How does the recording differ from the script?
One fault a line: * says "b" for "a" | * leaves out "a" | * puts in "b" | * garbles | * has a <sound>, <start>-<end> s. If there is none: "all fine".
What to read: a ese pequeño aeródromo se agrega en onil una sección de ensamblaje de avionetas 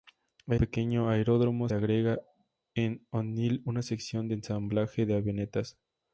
* leaves out "ese"
* leaves out "se"